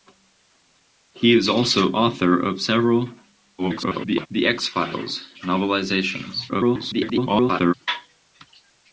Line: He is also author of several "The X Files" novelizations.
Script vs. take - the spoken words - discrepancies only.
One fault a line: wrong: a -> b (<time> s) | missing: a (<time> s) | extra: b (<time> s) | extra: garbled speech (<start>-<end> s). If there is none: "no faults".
extra: garbled speech (3.6-4.3 s)
extra: garbled speech (6.5-7.7 s)